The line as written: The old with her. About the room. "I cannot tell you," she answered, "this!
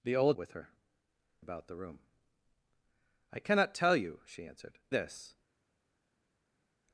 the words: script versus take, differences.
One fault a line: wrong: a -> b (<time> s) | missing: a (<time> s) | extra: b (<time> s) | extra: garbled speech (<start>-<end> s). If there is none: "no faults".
no faults